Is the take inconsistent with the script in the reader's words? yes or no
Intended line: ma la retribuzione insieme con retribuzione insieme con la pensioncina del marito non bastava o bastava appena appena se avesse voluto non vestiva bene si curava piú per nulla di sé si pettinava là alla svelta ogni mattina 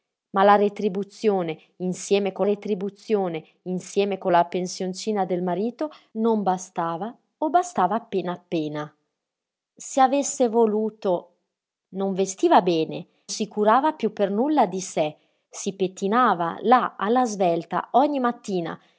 no